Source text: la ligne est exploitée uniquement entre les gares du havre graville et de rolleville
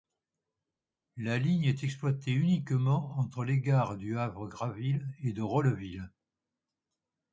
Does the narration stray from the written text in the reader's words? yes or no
no